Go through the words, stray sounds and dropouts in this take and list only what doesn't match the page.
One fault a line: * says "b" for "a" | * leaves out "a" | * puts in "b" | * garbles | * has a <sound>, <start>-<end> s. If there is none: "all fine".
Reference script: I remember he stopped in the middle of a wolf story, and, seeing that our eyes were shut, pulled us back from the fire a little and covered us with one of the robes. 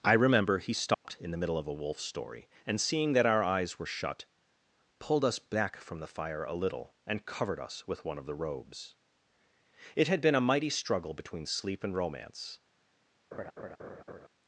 * has a dropout, 0.9-1.1 s
* puts in "It had been a mighty struggle between Sleep and Romance"
* has a laugh, 13.3-14.3 s